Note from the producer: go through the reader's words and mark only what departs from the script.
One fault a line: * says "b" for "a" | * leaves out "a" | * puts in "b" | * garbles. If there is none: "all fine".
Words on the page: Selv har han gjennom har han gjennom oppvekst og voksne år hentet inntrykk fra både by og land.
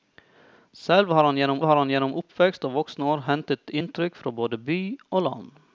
all fine